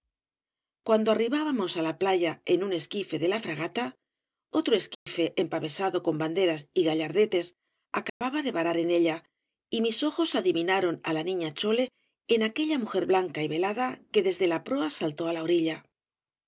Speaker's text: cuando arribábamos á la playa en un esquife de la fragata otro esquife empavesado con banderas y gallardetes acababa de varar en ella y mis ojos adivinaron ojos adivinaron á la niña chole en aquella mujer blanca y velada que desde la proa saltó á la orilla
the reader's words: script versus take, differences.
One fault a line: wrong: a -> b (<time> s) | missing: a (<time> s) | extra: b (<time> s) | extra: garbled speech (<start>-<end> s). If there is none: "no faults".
missing: ojos adivinaron (10.9 s)